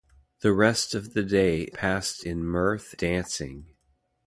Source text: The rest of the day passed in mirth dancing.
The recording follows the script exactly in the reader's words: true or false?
true